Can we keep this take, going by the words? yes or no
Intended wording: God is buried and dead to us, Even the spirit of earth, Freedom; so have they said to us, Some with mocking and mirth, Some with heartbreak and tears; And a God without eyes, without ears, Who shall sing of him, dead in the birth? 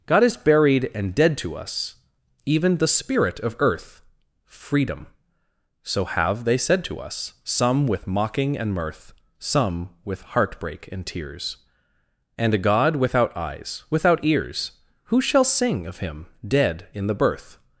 yes